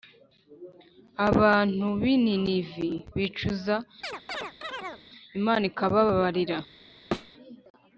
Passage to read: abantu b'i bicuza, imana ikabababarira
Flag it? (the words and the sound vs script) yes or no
yes